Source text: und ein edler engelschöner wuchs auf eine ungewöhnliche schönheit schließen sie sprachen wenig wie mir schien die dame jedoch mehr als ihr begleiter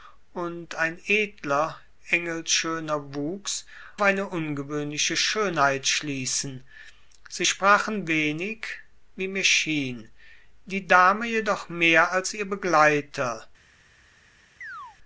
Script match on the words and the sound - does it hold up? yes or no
no